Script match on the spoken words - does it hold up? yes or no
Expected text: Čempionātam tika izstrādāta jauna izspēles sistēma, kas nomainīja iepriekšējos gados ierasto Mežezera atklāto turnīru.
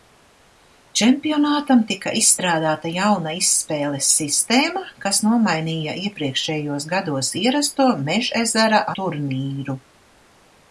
no